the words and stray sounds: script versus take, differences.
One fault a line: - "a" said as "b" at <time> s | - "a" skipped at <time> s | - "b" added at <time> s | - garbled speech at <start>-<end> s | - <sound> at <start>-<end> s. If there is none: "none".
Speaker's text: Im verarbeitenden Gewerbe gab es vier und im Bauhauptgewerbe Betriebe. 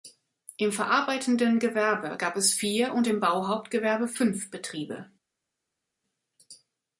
- "fünf" added at 4.1 s